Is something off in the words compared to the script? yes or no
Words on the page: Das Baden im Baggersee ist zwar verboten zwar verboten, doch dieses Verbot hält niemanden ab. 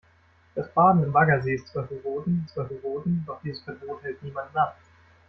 no